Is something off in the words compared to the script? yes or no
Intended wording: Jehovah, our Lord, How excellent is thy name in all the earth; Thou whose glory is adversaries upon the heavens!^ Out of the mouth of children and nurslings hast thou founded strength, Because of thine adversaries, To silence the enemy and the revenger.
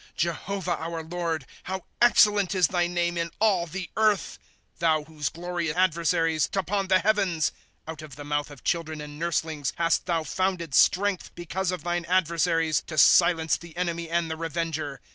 no